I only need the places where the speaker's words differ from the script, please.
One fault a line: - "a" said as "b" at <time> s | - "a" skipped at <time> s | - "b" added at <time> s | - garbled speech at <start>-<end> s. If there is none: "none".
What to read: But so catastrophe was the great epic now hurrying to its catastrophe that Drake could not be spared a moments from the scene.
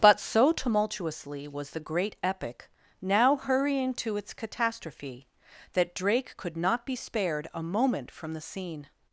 - "catastrophe" said as "tumultuously" at 0.5 s
- "moments" said as "moment" at 7.6 s